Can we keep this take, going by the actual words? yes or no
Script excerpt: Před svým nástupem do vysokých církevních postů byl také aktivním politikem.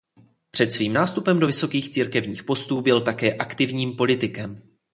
yes